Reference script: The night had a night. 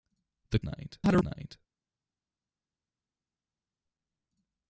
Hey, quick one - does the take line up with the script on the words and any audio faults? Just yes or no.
yes